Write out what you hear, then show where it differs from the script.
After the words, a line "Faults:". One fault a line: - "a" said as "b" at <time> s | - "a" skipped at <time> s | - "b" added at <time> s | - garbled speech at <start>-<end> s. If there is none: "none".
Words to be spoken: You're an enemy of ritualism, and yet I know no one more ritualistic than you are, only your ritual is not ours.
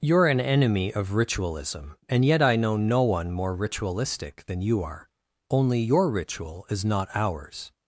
You're an enemy of ritualism, and yet I know no one more ritualistic than you are, only your ritual is not ours.
Faults:
none